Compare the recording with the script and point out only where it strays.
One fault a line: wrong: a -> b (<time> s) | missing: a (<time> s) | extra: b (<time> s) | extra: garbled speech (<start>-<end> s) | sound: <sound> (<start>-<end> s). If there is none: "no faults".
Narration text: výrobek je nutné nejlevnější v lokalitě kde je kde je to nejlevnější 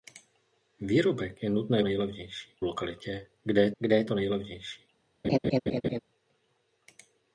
sound: laugh (5.2-6.0 s)